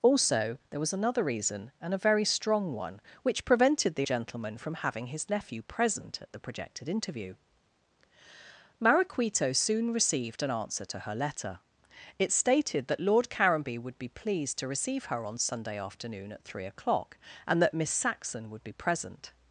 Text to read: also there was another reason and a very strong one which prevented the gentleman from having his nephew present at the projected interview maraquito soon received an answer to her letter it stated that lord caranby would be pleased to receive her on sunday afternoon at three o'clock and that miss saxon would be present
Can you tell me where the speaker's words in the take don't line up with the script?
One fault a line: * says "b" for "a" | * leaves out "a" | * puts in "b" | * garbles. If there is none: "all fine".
all fine